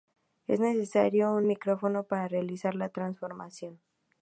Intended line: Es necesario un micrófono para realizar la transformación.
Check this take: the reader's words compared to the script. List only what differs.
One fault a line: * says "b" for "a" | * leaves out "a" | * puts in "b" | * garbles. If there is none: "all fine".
all fine